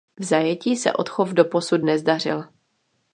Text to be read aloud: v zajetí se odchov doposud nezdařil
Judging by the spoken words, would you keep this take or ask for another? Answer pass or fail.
pass